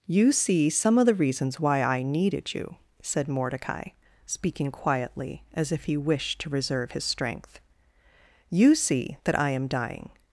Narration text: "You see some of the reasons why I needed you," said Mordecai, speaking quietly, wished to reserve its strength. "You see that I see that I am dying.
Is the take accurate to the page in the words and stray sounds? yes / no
no